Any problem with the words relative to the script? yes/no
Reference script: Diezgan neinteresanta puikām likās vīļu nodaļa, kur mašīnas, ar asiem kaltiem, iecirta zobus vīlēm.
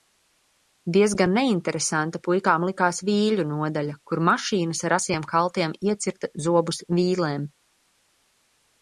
no